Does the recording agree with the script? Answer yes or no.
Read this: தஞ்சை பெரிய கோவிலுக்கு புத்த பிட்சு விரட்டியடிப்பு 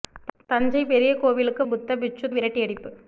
yes